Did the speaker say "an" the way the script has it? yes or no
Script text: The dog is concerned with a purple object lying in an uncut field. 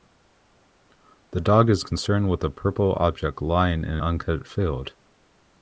no